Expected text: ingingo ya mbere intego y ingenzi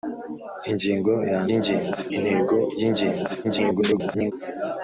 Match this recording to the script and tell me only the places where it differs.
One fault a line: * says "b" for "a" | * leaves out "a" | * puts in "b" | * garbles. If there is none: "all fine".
* says "ingenzi" for "mbere"
* garbles